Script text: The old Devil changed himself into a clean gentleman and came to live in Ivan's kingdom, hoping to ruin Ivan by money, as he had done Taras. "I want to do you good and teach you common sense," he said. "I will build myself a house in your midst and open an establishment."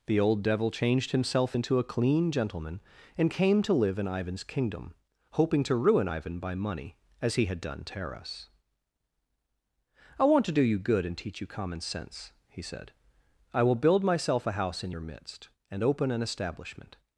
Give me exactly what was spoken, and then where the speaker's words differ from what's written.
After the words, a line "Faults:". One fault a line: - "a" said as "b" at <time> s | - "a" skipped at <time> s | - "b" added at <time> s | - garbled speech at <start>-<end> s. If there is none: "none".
The old Devil changed himself into a clean gentleman and came to live in Ivan's kingdom, hoping to ruin Ivan by money, as he had done Taras. "I want to do you good and teach you common sense," he said. "I will build myself a house in your midst and open an establishment."
Faults:
none